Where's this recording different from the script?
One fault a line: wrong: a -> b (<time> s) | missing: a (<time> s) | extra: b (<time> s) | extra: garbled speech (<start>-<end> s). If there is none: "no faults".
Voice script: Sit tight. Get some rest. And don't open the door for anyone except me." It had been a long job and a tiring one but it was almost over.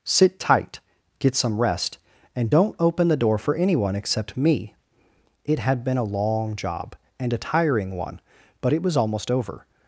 no faults